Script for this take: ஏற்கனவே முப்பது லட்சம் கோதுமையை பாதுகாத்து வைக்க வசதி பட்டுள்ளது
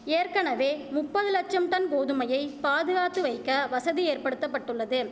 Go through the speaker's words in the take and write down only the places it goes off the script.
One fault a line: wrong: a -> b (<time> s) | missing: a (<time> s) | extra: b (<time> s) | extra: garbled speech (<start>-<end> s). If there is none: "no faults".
extra: டன் (1.7 s)
extra: ஏற்படுத்த (4.0 s)